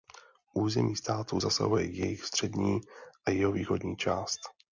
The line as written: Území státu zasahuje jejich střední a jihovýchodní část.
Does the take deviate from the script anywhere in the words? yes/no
no